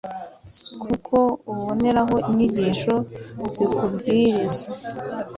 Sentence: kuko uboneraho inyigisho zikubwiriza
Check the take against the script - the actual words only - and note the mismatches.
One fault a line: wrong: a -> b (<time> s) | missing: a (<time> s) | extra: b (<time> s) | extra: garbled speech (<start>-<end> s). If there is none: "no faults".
no faults